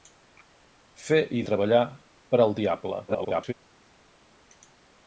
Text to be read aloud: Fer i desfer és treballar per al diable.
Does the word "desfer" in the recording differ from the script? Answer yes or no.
yes